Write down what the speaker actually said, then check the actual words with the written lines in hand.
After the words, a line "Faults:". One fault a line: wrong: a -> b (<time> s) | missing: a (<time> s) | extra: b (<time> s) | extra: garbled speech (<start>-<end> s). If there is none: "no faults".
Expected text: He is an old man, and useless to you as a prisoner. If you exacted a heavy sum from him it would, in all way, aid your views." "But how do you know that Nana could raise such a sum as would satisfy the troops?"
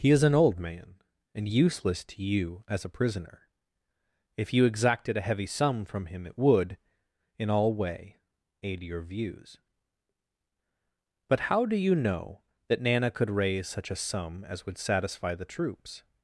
He is an old man, and useless to you as a prisoner. If you exacted a heavy sum from him it would, in all way, aid your views." "But how do you know that Nana could raise such a sum as would satisfy the troops?"
Faults:
no faults